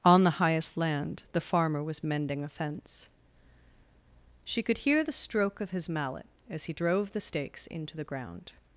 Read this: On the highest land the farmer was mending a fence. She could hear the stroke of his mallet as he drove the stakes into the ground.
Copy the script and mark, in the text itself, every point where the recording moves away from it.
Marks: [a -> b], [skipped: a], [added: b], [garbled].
On the highest land the farmer was mending a fence. She could hear the stroke of his mallet as he drove the stakes into the ground.